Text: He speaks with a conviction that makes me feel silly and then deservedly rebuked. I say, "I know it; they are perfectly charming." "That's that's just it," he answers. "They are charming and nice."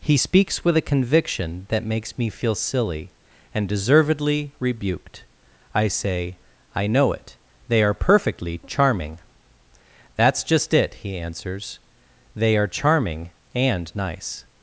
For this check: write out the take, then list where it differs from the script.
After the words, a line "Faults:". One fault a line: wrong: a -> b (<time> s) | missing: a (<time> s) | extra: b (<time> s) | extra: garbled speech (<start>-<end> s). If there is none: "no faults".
He speaks with a conviction that makes me feel silly and deservedly rebuked. I say, "I know it; they are perfectly charming." "That's just it," he answers. "They are charming and nice."
Faults:
missing: then (3.7 s)
missing: that's (10.4 s)